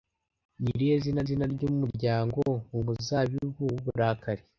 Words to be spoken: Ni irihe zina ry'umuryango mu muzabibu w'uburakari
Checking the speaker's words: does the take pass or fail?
fail